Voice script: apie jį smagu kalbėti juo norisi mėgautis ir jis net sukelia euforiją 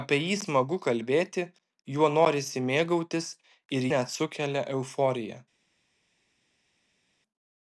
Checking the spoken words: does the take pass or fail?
fail